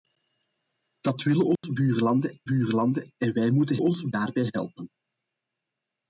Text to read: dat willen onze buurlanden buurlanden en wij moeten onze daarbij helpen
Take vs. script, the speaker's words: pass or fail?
pass